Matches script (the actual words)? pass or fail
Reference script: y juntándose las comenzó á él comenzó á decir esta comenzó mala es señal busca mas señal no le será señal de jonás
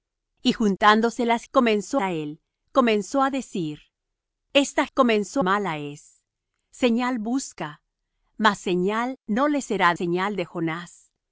pass